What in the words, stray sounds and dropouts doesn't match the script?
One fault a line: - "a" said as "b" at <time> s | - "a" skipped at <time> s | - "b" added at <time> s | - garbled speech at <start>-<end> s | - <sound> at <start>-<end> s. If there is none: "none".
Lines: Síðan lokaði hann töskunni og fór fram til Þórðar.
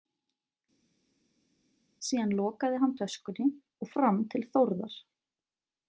- "fór" skipped at 3.9 s